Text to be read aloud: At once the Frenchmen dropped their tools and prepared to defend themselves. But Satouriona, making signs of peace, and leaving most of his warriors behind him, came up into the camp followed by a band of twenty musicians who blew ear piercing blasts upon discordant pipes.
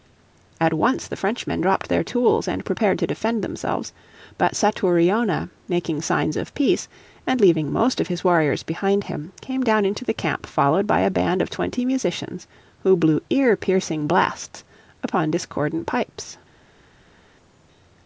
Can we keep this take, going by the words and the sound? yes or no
no